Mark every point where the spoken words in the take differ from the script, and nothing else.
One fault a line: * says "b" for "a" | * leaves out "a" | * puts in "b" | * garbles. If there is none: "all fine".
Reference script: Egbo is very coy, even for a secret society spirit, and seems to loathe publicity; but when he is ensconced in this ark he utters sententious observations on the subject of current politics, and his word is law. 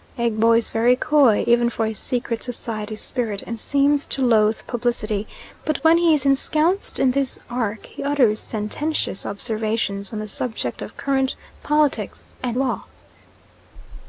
* leaves out "his word is"